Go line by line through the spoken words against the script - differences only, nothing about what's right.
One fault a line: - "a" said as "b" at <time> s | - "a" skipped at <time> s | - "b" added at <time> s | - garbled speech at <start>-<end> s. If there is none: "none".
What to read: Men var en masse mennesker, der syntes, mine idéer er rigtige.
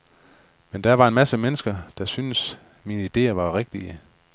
- "der" added at 0.8 s
- "er" said as "var" at 3.3 s